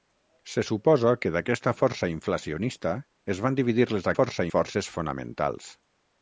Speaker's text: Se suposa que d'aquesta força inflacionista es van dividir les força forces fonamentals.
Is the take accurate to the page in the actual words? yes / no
yes